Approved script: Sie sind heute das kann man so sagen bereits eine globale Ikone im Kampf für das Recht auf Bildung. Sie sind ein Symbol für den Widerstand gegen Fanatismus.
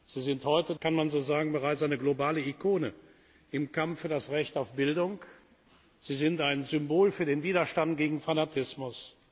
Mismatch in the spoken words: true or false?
true